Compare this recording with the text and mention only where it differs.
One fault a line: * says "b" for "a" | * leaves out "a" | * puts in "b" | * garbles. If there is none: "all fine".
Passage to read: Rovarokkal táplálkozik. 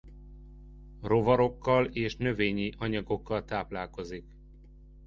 * puts in "és növényi anyagokkal"